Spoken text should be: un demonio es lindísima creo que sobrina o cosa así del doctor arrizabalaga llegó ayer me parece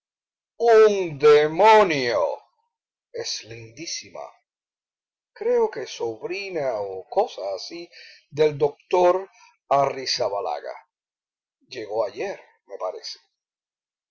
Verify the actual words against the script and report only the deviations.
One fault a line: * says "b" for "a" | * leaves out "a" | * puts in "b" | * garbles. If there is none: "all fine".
all fine